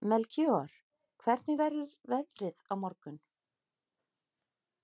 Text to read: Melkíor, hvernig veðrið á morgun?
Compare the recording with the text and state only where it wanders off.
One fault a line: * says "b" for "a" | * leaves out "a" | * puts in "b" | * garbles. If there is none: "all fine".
* puts in "verður"